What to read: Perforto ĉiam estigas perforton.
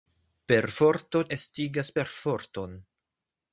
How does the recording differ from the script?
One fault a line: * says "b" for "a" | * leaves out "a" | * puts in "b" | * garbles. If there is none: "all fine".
* leaves out "ĉiam"